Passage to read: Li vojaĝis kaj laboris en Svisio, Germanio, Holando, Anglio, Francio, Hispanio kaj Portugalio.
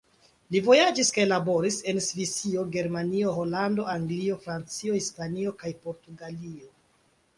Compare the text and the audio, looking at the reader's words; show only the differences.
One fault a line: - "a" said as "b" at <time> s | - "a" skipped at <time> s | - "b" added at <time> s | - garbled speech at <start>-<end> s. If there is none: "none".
none